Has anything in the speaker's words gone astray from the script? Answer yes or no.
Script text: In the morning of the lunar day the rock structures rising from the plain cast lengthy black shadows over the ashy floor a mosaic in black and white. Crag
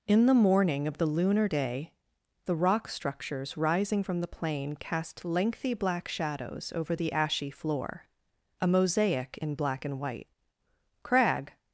no